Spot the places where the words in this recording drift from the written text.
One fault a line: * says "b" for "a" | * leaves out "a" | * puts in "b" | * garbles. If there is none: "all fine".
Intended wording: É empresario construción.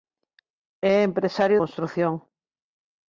all fine